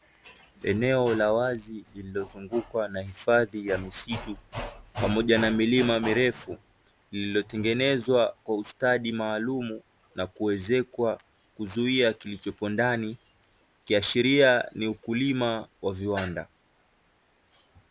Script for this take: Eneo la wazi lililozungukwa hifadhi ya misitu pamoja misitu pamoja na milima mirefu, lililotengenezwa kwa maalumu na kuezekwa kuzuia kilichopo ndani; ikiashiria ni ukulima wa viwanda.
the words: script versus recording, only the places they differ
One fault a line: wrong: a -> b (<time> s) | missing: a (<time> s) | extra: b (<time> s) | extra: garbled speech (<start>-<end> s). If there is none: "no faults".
extra: na (2.9 s)
missing: misitu pamoja (5.4 s)
extra: ustadi (8.6 s)